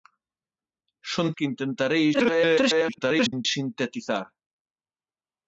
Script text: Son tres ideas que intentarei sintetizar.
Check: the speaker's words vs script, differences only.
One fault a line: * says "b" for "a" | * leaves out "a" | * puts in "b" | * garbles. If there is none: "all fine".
* leaves out "tres ideas"
* garbles